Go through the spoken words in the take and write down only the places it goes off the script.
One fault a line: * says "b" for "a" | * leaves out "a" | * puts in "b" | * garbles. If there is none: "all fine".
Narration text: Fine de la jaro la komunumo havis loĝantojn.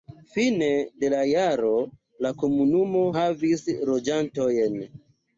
all fine